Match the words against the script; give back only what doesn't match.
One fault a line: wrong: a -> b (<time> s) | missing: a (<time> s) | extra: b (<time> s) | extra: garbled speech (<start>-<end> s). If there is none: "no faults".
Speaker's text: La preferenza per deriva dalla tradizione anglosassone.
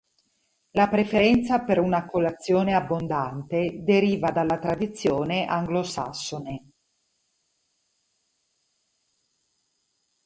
extra: una colazione abbondante (1.8 s)